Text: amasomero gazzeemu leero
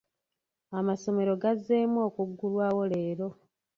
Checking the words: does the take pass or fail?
fail